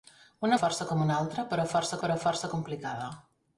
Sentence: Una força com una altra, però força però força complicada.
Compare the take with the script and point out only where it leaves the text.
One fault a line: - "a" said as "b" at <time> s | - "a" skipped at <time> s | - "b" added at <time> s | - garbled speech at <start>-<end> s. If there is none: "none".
none